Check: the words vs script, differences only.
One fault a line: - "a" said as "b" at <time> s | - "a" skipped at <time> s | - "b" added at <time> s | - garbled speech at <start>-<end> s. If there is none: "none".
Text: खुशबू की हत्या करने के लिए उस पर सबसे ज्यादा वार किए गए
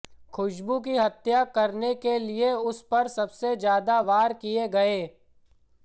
none